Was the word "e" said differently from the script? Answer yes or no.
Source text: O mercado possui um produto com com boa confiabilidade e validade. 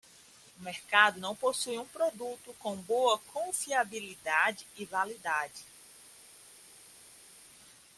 no